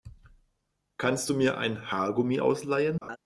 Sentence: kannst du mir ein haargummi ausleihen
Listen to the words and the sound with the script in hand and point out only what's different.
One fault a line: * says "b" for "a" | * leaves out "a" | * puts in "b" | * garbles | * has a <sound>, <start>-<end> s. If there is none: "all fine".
* has a laugh, 3.0-3.2 s